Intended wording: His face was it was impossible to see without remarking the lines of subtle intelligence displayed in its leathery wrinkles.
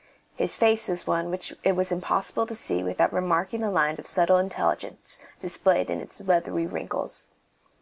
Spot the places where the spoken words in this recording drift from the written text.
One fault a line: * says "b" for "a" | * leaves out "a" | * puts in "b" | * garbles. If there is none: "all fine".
* puts in "one which"